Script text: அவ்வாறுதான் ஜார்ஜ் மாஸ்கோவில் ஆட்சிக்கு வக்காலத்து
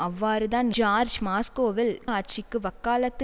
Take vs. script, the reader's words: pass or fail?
pass